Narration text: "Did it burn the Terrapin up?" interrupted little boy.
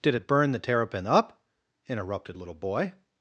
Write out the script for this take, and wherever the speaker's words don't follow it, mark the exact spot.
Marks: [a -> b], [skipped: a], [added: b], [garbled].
"Did it burn the Terrapin up?" interrupted little boy.